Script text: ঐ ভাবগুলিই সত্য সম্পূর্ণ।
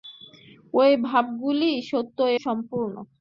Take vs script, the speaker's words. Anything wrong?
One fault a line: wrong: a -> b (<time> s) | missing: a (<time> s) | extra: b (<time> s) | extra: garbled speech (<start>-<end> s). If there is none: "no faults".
no faults